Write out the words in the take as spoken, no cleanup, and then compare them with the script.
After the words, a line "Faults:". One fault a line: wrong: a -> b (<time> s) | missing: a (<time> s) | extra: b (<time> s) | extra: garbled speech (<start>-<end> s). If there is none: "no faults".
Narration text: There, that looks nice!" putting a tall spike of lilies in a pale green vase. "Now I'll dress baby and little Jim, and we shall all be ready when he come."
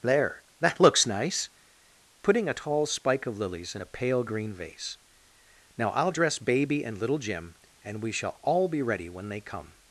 There, that looks nice!" putting a tall spike of lilies in a pale green vase. "Now I'll dress baby and little Jim, and we shall all be ready when they come."
Faults:
wrong: he -> they (9.3 s)